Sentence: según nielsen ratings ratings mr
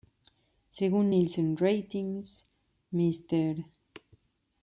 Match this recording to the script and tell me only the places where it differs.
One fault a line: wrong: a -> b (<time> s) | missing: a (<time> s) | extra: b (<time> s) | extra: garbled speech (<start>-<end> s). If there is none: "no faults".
missing: ratings (2.5 s)